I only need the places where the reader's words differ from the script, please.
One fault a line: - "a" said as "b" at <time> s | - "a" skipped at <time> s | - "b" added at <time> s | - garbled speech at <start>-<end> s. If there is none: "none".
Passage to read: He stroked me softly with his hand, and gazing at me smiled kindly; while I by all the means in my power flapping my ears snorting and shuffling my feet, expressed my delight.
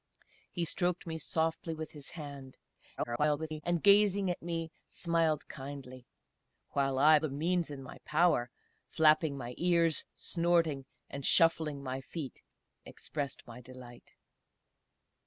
- garbled speech at 3.0-3.6 s
- "by all" skipped at 7.2 s